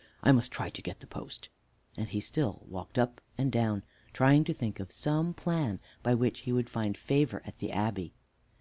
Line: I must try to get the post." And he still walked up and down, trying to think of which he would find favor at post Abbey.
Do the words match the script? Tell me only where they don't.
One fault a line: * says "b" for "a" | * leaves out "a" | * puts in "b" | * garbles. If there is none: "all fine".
* puts in "some plan by"
* says "the" for "post"